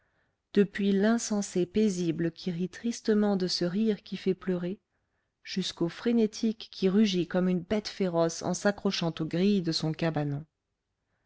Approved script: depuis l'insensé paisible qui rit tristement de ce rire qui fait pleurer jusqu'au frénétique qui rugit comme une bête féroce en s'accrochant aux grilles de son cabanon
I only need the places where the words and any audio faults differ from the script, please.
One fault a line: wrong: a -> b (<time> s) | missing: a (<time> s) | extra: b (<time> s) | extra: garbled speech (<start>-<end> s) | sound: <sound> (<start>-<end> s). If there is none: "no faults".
no faults